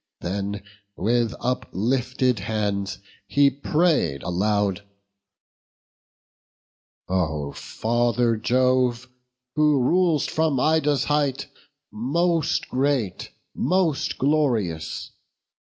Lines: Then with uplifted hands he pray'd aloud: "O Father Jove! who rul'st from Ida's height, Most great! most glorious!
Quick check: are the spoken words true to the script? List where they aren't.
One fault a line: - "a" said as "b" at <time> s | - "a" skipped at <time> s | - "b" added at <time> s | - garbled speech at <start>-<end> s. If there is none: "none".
none